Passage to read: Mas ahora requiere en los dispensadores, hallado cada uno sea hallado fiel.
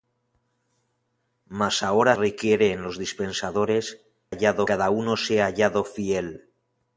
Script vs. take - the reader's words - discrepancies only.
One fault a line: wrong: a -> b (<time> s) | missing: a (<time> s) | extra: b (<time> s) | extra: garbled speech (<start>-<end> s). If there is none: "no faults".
no faults